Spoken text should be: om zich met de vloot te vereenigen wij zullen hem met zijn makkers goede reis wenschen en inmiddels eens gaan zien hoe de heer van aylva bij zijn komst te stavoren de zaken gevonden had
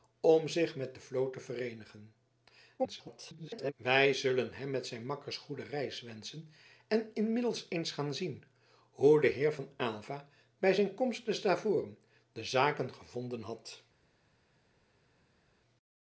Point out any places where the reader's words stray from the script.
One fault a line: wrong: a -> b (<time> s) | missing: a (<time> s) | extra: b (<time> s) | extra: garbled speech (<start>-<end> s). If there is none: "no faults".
extra: garbled speech (2.8-3.7 s)